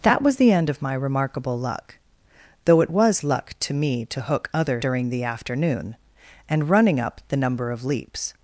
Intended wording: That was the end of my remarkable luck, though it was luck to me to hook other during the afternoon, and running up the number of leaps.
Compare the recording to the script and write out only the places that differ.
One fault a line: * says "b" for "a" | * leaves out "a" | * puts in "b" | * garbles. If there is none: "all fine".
all fine